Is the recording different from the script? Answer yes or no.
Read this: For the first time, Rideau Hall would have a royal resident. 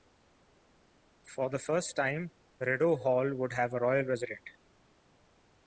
no